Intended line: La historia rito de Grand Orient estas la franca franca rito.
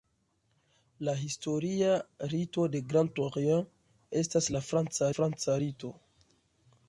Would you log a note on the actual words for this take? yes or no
no